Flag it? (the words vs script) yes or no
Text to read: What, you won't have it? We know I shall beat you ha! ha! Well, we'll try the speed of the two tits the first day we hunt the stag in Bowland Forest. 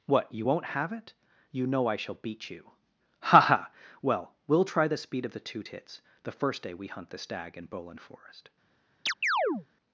yes